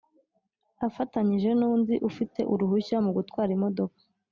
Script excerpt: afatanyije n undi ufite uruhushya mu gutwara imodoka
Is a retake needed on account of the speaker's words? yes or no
no